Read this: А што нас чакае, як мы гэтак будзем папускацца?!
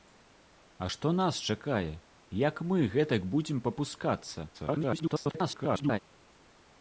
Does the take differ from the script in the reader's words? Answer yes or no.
yes